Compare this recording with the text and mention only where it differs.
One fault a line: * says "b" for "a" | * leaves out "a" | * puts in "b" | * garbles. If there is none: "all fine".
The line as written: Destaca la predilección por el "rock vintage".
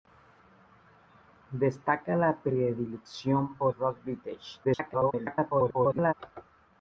* leaves out "el"
* garbles